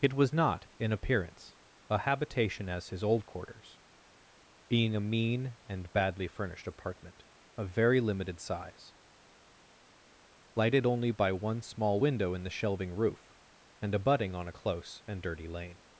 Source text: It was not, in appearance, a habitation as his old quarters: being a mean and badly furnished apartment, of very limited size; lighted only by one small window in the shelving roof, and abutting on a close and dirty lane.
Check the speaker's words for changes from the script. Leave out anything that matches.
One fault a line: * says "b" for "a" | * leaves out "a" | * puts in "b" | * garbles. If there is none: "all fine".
all fine